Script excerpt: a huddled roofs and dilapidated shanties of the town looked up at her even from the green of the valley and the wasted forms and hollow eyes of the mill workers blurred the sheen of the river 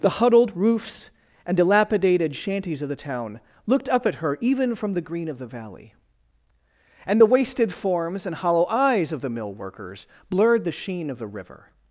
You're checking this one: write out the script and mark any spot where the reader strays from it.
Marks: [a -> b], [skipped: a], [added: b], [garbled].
[a -> the] huddled roofs and dilapidated shanties of the town looked up at her even from the green of the valley and the wasted forms and hollow eyes of the mill workers blurred the sheen of the river